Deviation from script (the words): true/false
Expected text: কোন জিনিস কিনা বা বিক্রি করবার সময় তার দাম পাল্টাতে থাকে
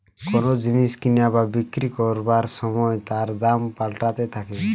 false